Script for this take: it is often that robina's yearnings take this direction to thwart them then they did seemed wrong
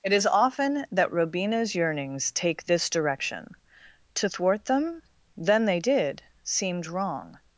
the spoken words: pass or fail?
pass